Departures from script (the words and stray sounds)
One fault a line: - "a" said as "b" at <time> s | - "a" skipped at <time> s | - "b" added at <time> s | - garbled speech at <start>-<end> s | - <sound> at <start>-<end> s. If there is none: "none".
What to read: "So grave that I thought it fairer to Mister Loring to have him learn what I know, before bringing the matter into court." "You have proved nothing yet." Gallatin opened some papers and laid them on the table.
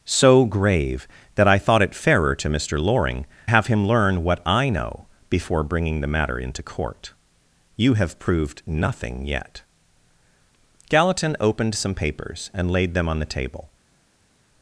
- "to" skipped at 3.3 s